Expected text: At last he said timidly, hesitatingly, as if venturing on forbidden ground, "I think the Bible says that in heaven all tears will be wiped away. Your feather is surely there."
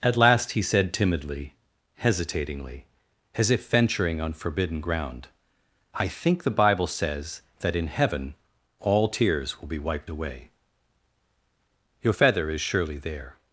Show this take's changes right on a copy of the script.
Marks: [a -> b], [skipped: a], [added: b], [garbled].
At last he said timidly, hesitatingly, as if venturing on forbidden ground, "I think the Bible says that in heaven all tears will be wiped away. Your feather is surely there."